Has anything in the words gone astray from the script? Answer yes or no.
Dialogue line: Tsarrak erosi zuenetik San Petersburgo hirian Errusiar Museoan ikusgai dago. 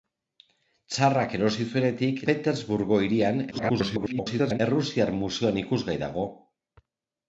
yes